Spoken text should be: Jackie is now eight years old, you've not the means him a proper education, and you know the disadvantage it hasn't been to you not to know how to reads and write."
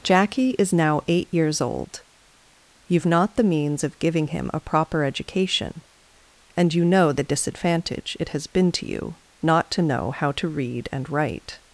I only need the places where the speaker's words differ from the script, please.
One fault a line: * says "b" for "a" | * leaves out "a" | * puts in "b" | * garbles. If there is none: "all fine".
* puts in "of giving"
* says "has" for "hasn't"
* says "read" for "reads"